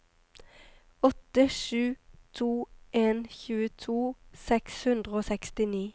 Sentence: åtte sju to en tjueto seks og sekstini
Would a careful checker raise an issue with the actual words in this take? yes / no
yes